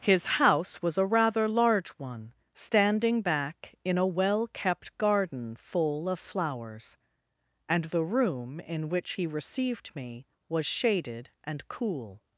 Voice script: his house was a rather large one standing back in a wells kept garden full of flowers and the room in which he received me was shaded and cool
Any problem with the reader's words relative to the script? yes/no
yes